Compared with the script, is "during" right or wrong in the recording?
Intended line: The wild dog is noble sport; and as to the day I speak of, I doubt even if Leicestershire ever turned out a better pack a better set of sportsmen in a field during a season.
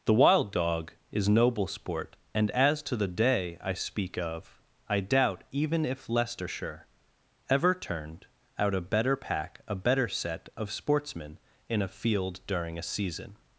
right